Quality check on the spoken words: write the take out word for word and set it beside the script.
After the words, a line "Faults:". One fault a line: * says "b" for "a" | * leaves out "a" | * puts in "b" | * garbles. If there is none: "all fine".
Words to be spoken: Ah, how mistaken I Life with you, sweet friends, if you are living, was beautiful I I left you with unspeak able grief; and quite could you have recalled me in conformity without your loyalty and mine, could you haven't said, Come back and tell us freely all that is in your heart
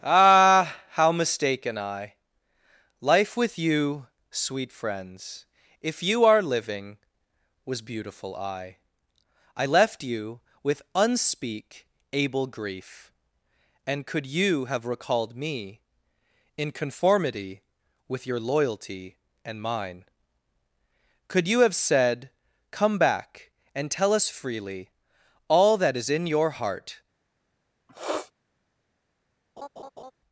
Ah, how mistaken I Life with you, sweet friends, if you are living, was beautiful I I left you with unspeak able grief; and could you have recalled me in conformity with your loyalty and mine, could you have said, Come back and tell us freely all that is in your heart
Faults:
* leaves out "quite"
* says "with" for "without"
* says "have" for "haven't"